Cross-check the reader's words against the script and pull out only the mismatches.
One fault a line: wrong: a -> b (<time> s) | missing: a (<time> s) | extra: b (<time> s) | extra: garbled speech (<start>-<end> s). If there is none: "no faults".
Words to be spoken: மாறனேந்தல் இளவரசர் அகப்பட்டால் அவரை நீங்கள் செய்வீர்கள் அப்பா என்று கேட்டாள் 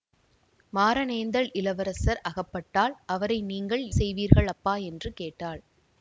no faults